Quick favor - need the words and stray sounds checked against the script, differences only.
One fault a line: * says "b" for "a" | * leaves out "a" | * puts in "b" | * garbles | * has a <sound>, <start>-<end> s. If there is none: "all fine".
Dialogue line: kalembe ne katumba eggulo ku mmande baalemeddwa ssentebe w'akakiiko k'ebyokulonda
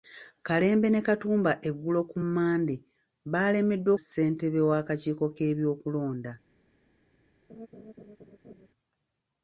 * has a laugh, 7.5-8.7 s